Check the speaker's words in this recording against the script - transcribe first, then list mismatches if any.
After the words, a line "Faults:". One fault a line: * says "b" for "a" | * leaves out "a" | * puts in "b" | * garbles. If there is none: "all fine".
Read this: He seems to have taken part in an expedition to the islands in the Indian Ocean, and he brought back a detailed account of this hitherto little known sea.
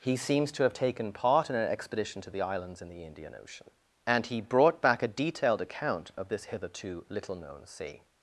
He seems to have taken part in an expedition to the islands in the Indian Ocean, and he brought back a detailed account of this hitherto little known sea.
Faults:
all fine